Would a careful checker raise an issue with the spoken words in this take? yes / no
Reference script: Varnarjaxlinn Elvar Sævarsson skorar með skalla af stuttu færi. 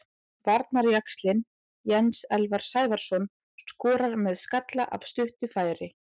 yes